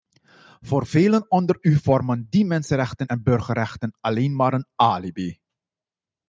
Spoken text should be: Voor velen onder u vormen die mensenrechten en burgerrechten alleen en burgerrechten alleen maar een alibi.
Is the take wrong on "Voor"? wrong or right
right